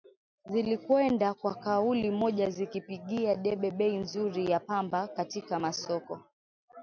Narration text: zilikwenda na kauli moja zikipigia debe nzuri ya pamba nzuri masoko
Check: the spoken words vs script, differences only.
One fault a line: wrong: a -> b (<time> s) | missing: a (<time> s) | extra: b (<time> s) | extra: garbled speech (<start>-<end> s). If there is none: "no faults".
wrong: na -> kwa (1.3 s)
extra: bei (3.7 s)
wrong: nzuri -> katika (5.1 s)